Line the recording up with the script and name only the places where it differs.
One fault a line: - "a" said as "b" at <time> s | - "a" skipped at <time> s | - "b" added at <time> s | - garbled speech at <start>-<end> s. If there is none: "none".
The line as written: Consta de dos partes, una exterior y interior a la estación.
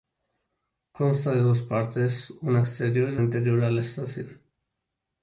none